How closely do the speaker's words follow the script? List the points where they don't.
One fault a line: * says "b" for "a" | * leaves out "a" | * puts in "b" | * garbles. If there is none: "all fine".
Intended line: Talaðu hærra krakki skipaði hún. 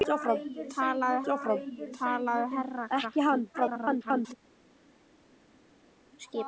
* puts in "talaðu"
* garbles